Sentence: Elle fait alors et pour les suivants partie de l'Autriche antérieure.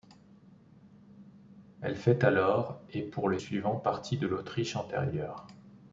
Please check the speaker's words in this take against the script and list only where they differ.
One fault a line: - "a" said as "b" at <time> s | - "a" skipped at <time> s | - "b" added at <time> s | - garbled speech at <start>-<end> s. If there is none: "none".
none